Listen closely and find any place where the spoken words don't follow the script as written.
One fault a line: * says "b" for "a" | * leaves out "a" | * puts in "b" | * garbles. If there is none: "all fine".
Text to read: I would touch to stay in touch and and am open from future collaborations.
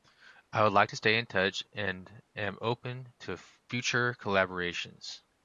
* says "like" for "touch"
* leaves out "and"
* says "to" for "from"